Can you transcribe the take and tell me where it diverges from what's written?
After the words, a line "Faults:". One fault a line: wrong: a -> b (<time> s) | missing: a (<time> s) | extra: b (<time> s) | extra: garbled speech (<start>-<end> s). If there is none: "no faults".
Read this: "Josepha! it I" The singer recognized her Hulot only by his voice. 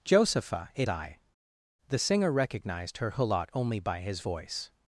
"Josepha! it I" The singer recognized her Hulot only by his voice.
Faults:
no faults